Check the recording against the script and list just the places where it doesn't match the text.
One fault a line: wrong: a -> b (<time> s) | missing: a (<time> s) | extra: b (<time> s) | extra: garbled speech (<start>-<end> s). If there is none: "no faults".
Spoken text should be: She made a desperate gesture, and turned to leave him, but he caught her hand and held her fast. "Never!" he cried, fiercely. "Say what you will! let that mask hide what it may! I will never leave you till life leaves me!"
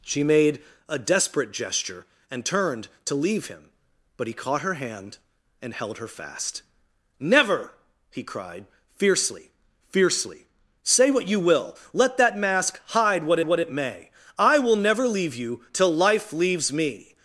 extra: fiercely (9.9 s)
extra: what (13.4 s)